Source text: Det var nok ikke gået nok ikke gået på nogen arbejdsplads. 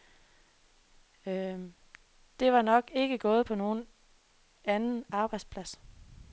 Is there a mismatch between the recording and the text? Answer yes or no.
yes